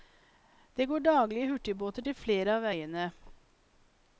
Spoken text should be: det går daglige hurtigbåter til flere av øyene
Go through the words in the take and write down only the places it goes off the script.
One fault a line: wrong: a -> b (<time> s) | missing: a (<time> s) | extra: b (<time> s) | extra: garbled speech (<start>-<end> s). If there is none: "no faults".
no faults